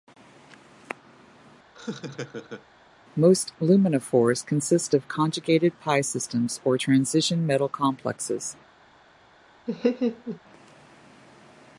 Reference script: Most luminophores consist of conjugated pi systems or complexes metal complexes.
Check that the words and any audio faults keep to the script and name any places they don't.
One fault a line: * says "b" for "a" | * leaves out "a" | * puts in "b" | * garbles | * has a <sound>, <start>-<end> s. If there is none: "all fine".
* has a laugh, 1.7-2.7 s
* says "transition" for "complexes"
* has a laugh, 9.7-10.4 s